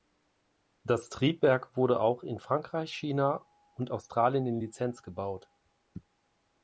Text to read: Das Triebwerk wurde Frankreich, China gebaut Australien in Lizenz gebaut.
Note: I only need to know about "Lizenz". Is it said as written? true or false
true